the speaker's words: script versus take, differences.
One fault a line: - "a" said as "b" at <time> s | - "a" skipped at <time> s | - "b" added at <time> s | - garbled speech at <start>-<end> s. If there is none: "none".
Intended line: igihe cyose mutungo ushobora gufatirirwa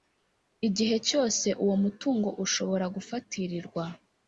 - "uwo" added at 1.6 s